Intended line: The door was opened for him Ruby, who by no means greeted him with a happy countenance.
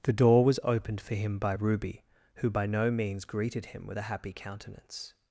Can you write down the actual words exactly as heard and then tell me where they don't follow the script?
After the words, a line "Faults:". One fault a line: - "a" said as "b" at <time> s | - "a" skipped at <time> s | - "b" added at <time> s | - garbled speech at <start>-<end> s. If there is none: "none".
The door was opened for him by Ruby, who by no means greeted him with a happy countenance.
Faults:
- "by" added at 1.4 s